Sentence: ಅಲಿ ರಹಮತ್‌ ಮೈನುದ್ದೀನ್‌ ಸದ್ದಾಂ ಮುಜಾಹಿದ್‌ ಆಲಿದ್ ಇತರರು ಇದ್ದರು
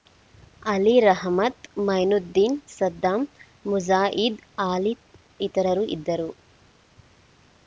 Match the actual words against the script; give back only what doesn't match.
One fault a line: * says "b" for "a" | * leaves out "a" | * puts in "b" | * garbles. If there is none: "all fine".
all fine